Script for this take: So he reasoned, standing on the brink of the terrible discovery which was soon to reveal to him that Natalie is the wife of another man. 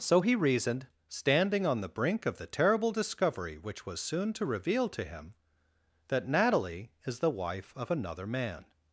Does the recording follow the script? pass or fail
pass